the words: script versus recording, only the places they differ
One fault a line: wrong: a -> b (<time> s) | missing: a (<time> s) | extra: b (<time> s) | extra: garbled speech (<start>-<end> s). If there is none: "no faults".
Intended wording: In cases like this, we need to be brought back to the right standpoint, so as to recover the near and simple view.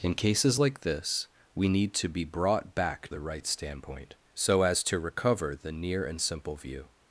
missing: to (3.1 s)